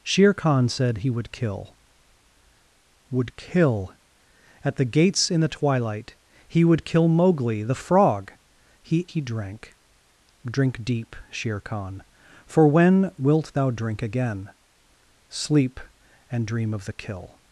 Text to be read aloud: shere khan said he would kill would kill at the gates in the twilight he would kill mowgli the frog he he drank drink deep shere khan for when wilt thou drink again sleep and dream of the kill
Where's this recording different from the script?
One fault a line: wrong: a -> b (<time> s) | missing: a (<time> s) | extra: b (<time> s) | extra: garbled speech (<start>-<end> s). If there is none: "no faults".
no faults